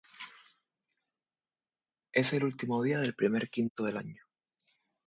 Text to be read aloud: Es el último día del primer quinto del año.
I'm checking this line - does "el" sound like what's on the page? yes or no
yes